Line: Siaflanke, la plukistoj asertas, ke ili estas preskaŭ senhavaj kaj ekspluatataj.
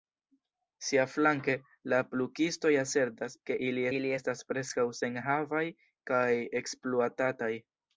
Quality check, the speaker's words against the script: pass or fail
fail